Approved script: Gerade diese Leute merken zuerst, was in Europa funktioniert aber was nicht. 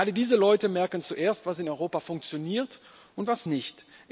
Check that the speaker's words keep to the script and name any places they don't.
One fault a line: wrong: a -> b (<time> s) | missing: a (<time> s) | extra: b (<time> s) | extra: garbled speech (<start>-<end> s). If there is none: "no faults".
wrong: aber -> und (3.2 s)